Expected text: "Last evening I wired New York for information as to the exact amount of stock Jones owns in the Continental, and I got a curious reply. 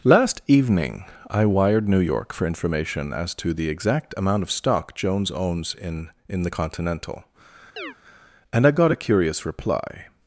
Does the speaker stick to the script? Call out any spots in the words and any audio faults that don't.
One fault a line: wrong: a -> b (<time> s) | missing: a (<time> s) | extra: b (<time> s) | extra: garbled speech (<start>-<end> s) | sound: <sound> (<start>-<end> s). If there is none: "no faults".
extra: in (6.3 s)
sound: chirp (7.8-8.0 s)